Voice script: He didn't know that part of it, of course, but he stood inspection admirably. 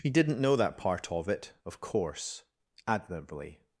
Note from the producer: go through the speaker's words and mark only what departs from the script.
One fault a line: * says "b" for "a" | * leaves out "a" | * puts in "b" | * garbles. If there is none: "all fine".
* leaves out "but he stood inspection"